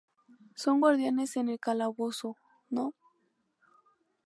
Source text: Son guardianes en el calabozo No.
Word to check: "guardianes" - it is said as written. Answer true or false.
true